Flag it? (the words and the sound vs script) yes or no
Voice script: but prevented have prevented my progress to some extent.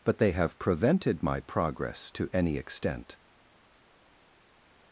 yes